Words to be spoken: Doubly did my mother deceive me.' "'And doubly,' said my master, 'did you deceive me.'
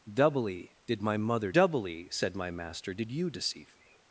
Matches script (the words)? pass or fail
fail